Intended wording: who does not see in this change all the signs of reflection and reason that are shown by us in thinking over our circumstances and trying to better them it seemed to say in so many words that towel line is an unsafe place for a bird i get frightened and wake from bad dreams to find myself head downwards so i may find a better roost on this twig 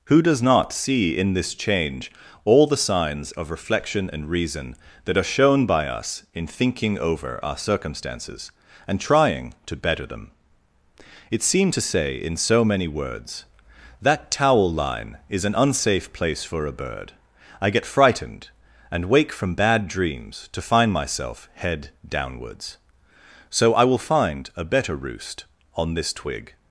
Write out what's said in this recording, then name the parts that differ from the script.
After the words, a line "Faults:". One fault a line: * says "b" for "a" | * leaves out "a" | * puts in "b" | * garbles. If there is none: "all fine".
who does not see in this change all the signs of reflection and reason that are shown by us in thinking over our circumstances and trying to better them it seemed to say in so many words that towel line is an unsafe place for a bird i get frightened and wake from bad dreams to find myself head downwards so i will find a better roost on this twig
Faults:
* says "will" for "may"